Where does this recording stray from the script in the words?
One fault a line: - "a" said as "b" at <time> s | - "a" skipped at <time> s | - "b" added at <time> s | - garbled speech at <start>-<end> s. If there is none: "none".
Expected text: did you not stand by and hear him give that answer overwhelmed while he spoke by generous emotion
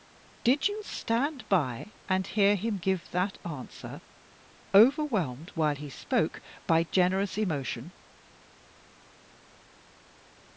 - "not" skipped at 0.8 s